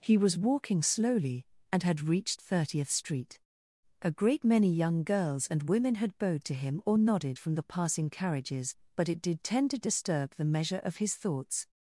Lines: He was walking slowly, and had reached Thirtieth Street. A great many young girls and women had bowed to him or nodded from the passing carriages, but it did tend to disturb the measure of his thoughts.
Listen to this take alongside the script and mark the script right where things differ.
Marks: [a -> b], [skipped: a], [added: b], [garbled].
He was walking slowly, and had reached Thirtieth Street. A great many young girls and women had bowed to him or nodded from the passing carriages, but it did tend to disturb the measure of his thoughts.